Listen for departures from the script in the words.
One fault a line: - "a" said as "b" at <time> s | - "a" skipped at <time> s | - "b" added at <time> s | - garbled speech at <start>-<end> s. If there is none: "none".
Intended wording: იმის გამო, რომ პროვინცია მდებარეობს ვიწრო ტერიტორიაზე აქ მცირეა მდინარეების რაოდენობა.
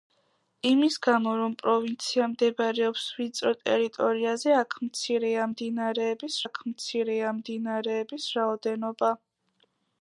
- "აქ მცირეა მდინარეების" added at 6.4 s